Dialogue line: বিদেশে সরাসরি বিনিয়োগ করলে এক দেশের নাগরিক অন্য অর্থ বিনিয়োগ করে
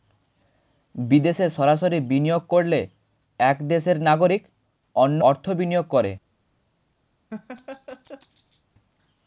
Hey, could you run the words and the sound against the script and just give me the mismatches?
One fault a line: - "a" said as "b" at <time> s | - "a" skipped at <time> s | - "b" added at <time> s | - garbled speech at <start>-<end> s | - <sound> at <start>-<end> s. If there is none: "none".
- laugh at 7.3-8.6 s